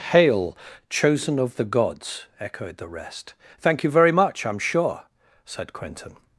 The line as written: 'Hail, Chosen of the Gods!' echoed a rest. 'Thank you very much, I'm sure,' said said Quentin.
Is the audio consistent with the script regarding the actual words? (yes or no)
no